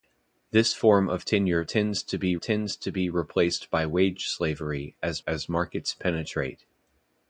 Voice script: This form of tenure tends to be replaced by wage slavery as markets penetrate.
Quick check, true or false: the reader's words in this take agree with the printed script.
false